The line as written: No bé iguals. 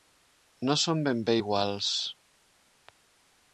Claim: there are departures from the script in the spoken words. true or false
true